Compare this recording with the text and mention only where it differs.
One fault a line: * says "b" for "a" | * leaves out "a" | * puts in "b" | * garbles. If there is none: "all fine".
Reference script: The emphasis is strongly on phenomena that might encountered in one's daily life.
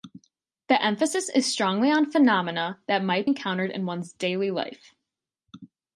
all fine